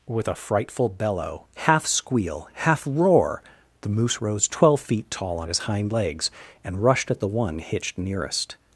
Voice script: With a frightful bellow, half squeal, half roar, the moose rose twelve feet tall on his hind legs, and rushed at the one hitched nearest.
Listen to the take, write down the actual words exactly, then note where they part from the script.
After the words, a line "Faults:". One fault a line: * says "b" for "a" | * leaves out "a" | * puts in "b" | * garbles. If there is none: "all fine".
With a frightful bellow, half squeal, half roar, the moose rose twelve feet tall on his hind legs, and rushed at the one hitched nearest.
Faults:
all fine